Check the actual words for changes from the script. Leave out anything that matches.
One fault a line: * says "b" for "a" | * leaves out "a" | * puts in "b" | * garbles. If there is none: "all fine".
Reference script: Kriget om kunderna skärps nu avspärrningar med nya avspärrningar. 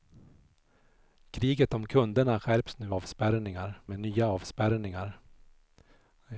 all fine